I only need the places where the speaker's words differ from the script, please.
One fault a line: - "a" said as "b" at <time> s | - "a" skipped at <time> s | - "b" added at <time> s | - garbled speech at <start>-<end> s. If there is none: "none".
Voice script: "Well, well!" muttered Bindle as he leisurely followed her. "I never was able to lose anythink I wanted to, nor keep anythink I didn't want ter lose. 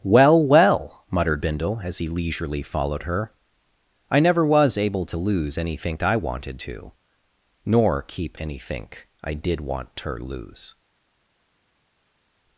- "didn't" said as "did" at 9.3 s